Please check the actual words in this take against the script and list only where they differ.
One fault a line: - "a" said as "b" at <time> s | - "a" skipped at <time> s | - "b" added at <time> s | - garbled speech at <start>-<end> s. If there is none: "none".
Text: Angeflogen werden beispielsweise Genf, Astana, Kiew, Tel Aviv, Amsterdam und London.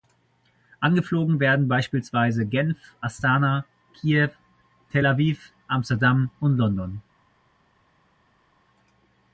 none